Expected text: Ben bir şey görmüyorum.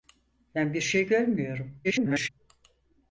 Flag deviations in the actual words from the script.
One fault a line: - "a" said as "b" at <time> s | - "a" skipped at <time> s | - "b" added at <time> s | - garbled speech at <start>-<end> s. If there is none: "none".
- garbled speech at 1.8-2.3 s